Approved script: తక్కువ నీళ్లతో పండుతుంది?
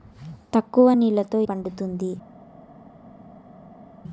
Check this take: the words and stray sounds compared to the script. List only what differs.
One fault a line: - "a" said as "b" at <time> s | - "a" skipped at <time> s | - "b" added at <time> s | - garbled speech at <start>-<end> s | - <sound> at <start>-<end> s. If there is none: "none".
none